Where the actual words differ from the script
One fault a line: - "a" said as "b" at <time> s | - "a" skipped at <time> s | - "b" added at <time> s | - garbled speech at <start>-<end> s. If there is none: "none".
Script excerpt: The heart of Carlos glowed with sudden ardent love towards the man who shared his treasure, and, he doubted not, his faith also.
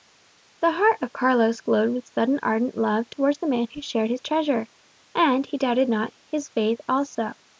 none